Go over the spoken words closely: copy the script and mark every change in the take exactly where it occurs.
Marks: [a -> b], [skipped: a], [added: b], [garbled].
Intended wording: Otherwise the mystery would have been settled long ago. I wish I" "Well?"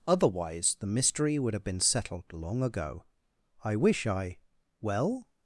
Otherwise the mystery would have been settled long ago. I wish I" "Well?"